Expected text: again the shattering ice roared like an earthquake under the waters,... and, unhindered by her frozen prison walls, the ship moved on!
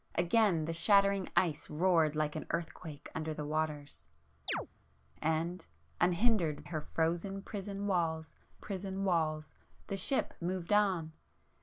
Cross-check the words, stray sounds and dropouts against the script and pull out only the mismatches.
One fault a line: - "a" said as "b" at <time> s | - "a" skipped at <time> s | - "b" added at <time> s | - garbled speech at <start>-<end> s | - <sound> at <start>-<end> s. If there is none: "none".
- chirp at 4.5-4.7 s
- "by" skipped at 6.6 s
- "prison walls" added at 8.6 s